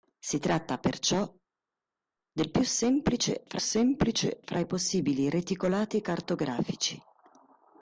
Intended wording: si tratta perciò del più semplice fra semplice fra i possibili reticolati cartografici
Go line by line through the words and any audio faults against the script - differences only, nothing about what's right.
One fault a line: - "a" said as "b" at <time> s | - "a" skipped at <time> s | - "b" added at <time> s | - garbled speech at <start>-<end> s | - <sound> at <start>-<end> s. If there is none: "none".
none